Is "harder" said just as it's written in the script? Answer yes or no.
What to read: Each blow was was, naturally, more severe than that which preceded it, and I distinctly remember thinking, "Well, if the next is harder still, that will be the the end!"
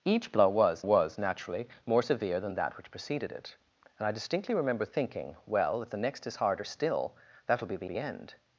yes